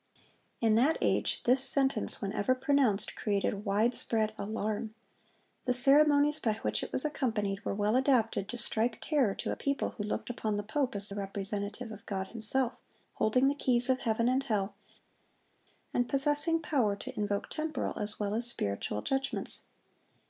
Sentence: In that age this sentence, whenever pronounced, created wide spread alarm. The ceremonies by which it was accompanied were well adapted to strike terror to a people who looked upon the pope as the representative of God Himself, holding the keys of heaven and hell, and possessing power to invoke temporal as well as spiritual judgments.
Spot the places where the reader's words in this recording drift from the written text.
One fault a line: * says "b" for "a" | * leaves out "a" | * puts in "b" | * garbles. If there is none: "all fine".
all fine